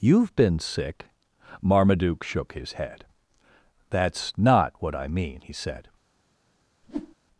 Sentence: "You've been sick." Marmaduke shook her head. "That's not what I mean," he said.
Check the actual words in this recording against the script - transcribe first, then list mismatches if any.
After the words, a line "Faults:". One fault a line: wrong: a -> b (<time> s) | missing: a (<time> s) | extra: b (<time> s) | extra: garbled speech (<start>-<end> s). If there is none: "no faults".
"You've been sick." Marmaduke shook his head. "That's not what I mean," he said.
Faults:
wrong: her -> his (2.5 s)